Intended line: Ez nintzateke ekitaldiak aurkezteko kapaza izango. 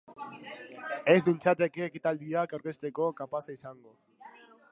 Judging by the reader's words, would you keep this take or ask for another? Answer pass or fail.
pass